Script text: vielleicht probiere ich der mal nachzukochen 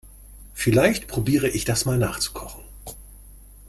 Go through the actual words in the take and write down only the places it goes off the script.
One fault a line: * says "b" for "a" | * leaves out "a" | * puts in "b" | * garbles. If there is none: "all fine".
* says "das" for "der"